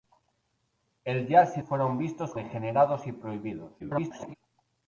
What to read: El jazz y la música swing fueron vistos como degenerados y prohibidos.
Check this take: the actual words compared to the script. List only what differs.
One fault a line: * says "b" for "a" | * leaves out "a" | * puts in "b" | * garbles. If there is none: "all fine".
* leaves out "la música swing"
* leaves out "como"
* garbles